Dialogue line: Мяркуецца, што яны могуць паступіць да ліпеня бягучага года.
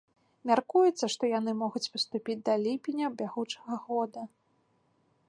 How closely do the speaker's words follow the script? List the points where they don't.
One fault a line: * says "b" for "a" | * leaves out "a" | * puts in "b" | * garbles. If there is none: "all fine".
all fine